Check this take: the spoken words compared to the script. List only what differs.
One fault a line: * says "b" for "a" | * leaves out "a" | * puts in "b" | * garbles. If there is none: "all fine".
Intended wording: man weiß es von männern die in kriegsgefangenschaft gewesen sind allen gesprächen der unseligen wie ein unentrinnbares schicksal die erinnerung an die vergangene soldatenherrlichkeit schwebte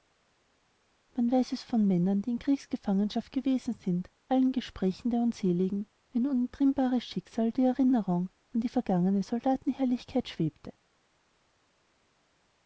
all fine